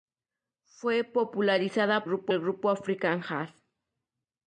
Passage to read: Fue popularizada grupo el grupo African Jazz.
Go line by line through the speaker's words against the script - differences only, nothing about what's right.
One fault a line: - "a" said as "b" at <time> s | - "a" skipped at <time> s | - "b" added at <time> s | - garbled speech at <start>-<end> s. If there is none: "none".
none